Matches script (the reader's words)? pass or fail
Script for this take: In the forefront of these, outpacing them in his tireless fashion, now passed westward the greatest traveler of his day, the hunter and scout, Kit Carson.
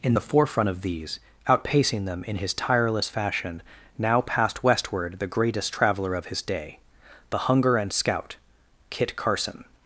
fail